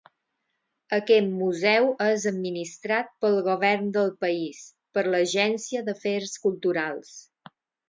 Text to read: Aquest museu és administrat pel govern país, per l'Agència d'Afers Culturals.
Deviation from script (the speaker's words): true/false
true